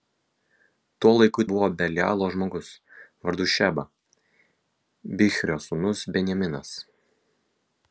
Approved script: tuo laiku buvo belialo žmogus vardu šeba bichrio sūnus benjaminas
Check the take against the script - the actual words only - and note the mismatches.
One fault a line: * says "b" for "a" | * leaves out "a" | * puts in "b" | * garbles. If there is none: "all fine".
all fine